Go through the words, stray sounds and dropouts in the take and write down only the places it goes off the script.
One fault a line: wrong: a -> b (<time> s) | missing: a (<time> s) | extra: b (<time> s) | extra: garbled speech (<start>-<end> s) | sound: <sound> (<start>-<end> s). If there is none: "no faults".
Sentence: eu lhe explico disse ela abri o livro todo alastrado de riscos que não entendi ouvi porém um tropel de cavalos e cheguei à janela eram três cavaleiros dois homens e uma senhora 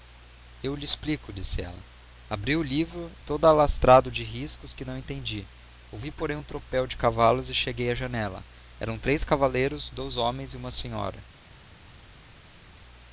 no faults